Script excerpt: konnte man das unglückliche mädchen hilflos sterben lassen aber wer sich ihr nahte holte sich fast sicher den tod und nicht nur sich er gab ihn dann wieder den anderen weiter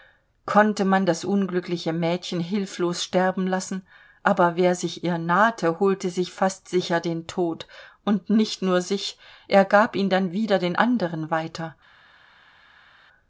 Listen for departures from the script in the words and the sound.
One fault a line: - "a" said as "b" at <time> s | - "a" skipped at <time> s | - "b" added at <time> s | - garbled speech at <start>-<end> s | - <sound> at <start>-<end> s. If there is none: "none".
none